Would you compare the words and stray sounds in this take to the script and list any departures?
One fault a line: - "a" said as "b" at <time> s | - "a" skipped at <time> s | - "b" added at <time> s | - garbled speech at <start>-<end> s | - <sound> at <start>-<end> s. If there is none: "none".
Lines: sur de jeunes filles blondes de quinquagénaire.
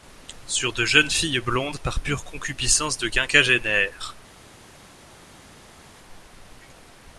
- "par pure concupiscence" added at 1.8 s